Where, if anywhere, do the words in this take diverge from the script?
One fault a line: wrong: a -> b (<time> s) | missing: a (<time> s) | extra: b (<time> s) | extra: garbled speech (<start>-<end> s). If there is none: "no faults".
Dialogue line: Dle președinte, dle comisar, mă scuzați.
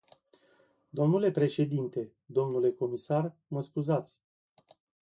no faults